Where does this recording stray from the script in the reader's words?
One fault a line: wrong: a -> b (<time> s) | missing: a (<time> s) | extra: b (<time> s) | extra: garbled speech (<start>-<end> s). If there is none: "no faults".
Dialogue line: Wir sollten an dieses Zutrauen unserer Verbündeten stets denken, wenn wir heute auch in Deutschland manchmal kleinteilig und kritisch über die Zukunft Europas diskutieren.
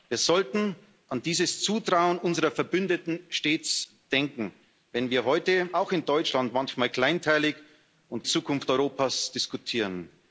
missing: kritisch über die (8.3 s)